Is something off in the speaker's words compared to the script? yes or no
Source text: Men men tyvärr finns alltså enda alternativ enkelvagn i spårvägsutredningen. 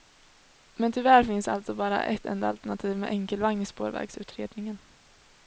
yes